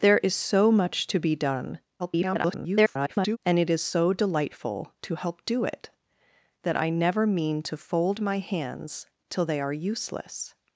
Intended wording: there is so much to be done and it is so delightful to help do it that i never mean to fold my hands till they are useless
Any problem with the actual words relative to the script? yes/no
yes